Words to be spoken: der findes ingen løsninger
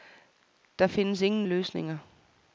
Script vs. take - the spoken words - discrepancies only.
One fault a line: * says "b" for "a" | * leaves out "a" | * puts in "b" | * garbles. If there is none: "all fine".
all fine